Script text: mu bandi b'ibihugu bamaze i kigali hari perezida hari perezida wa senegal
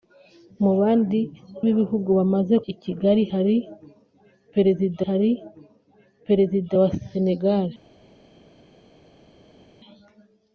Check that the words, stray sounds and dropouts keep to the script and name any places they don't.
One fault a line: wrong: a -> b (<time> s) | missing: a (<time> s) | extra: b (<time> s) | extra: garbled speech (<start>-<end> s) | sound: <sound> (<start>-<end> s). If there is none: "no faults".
no faults